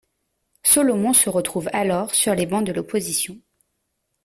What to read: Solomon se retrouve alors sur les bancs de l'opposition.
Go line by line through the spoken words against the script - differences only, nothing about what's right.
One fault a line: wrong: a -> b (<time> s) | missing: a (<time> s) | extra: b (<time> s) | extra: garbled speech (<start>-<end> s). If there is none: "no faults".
no faults